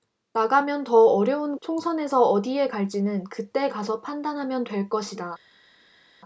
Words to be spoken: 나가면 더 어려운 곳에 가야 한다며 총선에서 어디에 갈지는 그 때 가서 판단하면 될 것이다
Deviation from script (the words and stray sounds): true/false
true